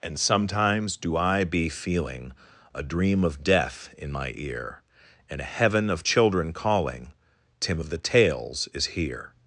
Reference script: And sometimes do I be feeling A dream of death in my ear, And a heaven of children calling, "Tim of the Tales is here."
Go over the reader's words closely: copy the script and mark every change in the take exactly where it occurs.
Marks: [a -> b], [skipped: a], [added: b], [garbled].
And sometimes do I be feeling A dream of death in my ear, And a heaven of children calling, "Tim of the Tales is here."